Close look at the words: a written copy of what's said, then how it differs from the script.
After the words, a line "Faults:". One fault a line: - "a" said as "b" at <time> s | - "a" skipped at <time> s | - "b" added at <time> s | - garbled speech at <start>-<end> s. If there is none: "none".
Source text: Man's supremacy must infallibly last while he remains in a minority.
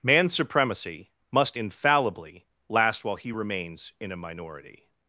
Man's supremacy must infallibly last while he remains in a minority.
Faults:
none